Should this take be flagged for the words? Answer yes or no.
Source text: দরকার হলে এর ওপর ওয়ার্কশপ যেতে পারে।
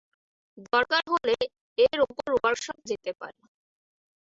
no